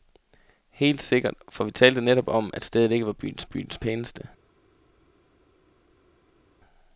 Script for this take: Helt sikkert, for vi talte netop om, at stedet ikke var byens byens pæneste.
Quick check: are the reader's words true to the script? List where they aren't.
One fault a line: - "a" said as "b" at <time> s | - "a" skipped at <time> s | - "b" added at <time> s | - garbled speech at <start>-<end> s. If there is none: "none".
none